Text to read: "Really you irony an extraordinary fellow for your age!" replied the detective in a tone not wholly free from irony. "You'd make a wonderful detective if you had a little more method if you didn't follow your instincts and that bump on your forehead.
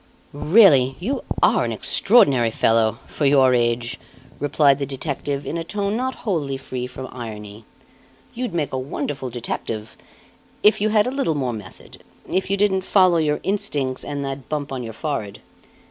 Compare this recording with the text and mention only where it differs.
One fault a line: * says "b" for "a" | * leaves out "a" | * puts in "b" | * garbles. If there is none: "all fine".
* says "are" for "irony"